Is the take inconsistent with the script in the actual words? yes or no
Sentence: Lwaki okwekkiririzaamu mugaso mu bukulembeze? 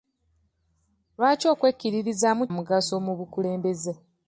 no